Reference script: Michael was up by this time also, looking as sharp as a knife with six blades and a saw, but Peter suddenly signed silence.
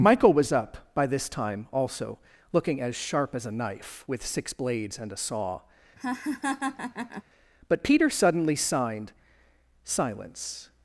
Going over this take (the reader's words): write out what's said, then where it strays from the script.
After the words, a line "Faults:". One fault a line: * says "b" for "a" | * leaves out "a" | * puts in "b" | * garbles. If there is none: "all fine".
Michael was up by this time also, looking as sharp as a knife with six blades and a saw, but Peter suddenly signed silence.
Faults:
all fine